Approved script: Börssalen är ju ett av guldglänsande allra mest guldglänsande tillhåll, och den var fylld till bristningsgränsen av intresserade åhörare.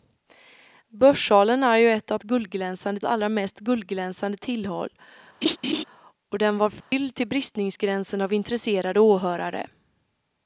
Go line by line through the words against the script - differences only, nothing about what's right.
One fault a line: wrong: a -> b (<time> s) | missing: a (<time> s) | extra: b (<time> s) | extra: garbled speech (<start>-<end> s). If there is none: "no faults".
no faults